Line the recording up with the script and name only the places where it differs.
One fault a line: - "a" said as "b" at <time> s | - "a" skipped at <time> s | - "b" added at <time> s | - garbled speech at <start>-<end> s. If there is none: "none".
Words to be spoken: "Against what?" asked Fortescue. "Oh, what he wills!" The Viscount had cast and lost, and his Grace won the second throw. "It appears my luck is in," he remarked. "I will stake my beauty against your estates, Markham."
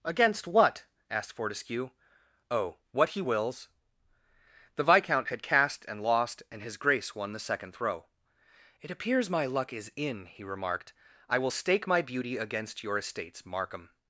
none